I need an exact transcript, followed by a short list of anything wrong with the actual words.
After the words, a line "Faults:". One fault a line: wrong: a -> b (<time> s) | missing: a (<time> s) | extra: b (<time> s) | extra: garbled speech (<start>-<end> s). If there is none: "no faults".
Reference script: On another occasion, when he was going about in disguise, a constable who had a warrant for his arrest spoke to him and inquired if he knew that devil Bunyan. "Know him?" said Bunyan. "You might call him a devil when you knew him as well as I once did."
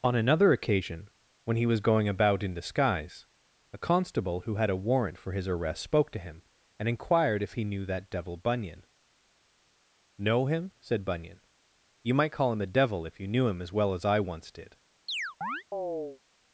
On another occasion, when he was going about in disguise, a constable who had a warrant for his arrest spoke to him and inquired if he knew that devil Bunyan. "Know him?" said Bunyan. "You might call him a devil if you knew him as well as I once did."
Faults:
wrong: when -> if (13.1 s)